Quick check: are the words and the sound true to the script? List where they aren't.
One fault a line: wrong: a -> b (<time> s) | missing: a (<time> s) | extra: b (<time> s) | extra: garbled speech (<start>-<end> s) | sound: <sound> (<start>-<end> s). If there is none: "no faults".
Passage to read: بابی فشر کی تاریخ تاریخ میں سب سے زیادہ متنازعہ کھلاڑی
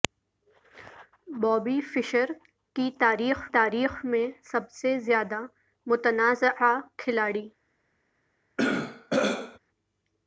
sound: throat clearing (8.6-9.6 s)